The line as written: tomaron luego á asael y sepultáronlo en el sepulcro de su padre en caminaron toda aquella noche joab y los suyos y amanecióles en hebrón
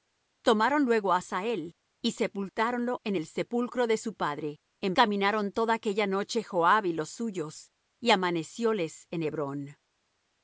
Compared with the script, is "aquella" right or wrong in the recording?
right